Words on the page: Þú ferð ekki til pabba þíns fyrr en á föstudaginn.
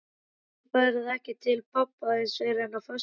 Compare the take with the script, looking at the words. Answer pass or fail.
pass